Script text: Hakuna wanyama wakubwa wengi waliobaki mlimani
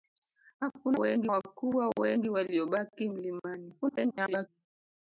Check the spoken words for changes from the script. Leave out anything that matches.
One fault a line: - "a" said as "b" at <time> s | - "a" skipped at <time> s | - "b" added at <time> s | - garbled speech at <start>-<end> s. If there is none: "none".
- "wanyama" said as "wengi" at 1.0 s
- garbled speech at 3.8-4.5 s